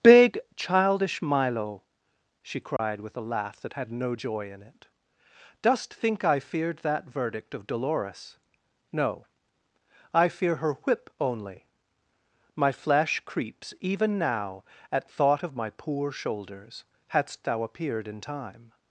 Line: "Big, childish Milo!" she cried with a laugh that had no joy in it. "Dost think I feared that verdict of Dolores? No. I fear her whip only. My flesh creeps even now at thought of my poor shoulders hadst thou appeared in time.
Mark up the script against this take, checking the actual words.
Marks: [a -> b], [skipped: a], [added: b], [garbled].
"Big, childish Milo!" she cried with a laugh that had no joy in it. "Dost think I feared that verdict of Dolores? No. I fear her whip only. My flesh creeps even now at thought of my poor shoulders hadst thou appeared in time.